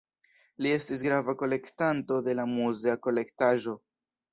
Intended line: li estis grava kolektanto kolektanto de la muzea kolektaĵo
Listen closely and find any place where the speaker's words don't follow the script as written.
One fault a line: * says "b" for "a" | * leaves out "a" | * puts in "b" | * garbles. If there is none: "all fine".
* leaves out "kolektanto"